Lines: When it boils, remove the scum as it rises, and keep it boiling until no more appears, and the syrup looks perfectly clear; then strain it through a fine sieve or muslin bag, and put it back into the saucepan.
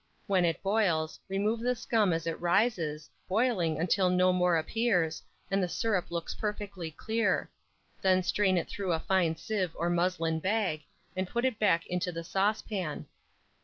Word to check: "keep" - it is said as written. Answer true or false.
false